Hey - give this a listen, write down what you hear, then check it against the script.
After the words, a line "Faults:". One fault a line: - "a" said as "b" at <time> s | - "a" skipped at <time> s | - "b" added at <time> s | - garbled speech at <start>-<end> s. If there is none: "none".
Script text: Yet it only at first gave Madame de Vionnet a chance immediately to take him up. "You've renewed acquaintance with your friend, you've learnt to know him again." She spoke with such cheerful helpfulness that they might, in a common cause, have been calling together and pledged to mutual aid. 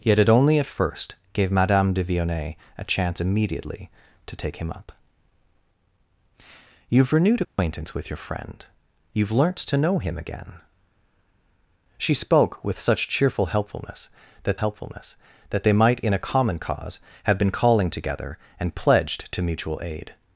Yet it only at first gave Madame de Vionnet a chance immediately to take him up. "You've renewed acquaintance with your friend, you've learnt to know him again." She spoke with such cheerful helpfulness that helpfulness that they might, in a common cause, have been calling together and pledged to mutual aid.
Faults:
- "helpfulness that" added at 14.6 s